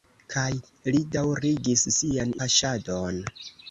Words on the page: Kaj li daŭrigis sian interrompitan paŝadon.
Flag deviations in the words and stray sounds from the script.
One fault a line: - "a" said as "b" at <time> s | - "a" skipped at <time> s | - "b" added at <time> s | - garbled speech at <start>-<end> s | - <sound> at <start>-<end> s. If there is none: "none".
- "interrompitan" skipped at 2.4 s